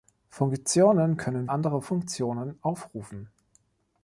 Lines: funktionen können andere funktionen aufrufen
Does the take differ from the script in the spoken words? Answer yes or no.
no